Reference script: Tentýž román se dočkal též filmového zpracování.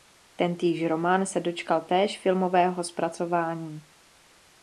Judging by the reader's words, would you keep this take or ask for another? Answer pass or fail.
pass